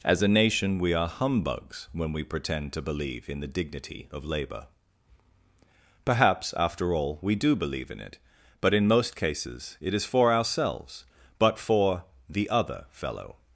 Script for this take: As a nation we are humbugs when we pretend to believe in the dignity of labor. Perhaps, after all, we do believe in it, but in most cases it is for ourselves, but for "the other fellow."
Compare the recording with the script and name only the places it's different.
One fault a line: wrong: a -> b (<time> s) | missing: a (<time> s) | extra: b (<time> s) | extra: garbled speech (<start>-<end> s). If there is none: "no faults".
no faults